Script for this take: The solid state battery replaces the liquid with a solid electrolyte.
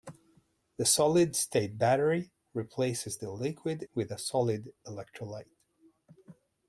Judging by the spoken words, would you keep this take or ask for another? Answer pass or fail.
pass